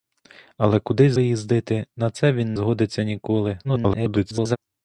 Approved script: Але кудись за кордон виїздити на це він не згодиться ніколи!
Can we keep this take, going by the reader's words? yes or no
no